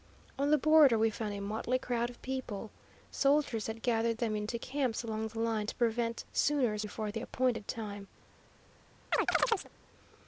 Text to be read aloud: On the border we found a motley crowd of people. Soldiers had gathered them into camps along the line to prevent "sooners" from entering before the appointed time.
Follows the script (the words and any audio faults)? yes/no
no